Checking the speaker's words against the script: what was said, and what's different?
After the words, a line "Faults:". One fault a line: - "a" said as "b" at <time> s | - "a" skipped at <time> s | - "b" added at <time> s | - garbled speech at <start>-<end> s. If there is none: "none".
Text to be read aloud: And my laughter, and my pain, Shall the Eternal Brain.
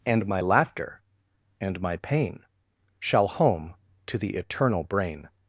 And my laughter, and my pain, Shall home to the Eternal Brain.
Faults:
- "home to" added at 3.3 s